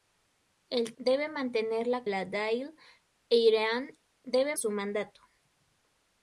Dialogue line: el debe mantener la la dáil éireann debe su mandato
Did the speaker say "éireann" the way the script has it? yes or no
yes